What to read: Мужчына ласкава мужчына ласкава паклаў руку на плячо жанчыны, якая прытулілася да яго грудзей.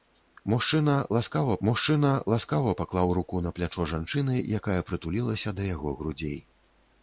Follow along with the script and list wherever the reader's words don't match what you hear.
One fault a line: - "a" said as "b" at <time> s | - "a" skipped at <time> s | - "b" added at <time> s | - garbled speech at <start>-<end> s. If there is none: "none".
none